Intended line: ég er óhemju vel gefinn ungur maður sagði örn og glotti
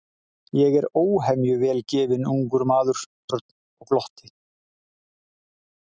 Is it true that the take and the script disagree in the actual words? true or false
true